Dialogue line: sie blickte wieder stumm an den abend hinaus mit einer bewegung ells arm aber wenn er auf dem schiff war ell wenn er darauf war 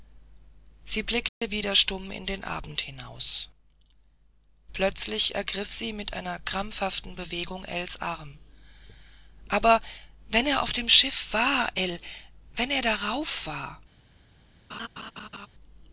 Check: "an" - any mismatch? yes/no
yes